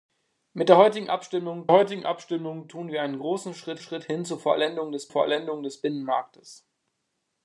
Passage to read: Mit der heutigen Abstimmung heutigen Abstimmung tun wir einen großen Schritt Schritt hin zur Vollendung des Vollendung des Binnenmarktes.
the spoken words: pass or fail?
pass